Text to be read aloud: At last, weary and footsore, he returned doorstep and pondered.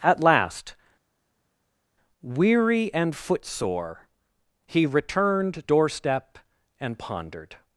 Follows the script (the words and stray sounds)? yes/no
yes